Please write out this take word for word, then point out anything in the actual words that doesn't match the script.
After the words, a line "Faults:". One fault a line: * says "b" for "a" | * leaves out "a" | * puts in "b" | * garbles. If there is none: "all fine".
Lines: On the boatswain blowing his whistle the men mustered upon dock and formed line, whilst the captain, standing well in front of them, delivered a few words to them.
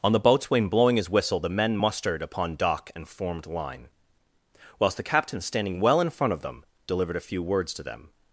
On the boatswain blowing his whistle the men mustered upon dock and formed line, whilst the captain, standing well in front of them, delivered a few words to them.
Faults:
all fine